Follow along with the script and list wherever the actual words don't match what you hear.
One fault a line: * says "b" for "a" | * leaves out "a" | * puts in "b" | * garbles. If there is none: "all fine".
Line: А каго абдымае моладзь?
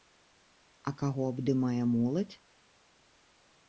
all fine